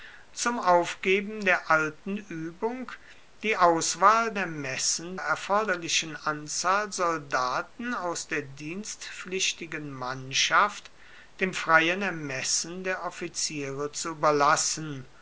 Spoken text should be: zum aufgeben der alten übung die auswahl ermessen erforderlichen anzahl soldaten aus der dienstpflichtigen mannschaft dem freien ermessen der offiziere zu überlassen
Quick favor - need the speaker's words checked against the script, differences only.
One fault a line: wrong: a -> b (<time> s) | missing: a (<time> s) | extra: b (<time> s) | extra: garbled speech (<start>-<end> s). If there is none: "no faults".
no faults